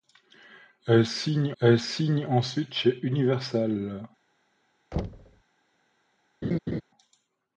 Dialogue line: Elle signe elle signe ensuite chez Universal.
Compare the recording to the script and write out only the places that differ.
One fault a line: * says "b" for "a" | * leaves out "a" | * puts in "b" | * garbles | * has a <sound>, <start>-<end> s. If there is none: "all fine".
* has a thud, 4.9-5.4 s
* has a laugh, 6.4-6.8 s